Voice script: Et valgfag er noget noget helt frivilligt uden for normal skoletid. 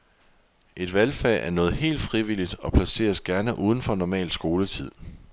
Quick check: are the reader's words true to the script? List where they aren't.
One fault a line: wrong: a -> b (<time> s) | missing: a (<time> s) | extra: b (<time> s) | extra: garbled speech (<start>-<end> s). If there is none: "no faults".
missing: noget (1.7 s)
extra: og placeres gerne (2.5 s)